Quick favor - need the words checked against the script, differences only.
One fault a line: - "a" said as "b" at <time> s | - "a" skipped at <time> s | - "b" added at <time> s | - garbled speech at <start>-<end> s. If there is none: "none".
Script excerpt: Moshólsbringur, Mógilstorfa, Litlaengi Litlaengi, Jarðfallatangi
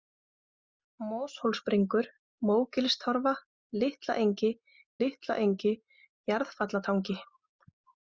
none